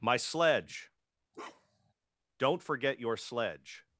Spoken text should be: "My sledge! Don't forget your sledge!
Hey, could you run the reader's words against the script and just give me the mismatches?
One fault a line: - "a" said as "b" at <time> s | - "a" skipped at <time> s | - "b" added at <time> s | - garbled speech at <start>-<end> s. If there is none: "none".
none